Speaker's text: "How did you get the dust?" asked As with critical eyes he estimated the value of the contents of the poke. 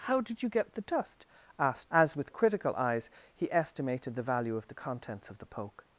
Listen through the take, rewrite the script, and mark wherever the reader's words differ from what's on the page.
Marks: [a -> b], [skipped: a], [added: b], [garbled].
"How did you get the dust?" asked As with critical eyes he estimated the value of the contents of the poke.